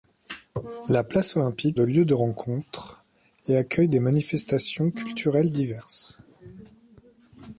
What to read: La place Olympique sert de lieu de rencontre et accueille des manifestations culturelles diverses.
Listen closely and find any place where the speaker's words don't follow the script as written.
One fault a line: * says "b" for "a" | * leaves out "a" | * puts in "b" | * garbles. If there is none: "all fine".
* leaves out "sert"